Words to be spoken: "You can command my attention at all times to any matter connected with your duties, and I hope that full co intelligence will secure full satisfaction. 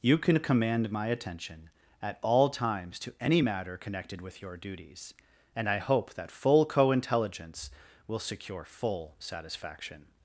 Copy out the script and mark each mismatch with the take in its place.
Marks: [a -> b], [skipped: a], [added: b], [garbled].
"You can command my attention at all times to any matter connected with your duties, and I hope that full co intelligence will secure full satisfaction.